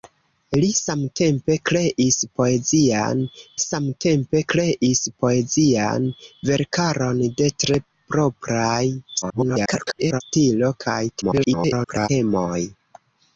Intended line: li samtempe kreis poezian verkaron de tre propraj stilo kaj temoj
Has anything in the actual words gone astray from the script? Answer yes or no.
yes